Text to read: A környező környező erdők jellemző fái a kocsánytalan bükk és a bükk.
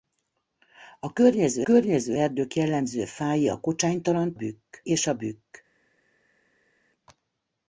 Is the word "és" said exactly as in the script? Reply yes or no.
yes